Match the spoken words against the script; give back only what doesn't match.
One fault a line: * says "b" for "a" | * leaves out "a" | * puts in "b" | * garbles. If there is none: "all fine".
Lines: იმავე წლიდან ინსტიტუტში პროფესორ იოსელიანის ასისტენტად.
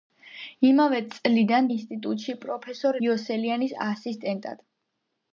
all fine